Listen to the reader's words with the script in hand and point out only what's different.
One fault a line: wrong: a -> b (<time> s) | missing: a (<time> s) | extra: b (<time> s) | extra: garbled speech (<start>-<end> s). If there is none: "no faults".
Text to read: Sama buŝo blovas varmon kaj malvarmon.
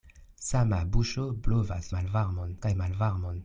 wrong: varmon -> malvarmon (2.0 s)